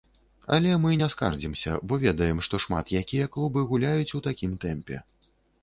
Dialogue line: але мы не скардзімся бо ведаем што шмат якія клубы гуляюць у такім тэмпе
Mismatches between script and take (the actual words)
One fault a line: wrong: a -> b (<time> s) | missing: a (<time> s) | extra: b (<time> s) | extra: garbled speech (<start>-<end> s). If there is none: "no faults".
no faults